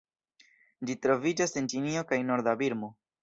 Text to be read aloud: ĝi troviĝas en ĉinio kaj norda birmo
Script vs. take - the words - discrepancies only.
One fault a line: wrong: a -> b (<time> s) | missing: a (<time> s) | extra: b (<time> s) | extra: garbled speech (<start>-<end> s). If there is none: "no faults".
no faults